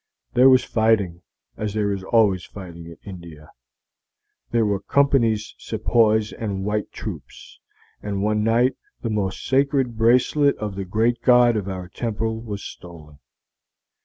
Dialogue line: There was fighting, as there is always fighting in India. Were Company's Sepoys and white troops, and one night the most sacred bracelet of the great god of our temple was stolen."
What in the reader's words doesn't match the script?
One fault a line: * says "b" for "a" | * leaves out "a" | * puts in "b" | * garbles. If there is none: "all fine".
* puts in "There"